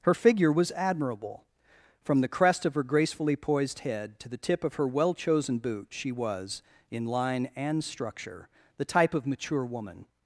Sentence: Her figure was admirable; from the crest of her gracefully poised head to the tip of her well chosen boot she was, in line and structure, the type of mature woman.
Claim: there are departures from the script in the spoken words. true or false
false